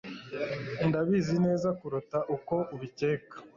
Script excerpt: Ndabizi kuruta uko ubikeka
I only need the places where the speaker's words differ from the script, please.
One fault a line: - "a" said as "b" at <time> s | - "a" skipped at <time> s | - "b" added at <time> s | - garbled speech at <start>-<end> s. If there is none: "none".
- "neza" added at 1.4 s